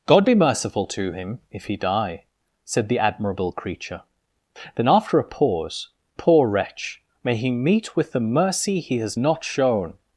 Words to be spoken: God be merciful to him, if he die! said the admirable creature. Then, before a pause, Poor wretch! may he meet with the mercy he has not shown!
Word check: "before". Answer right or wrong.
wrong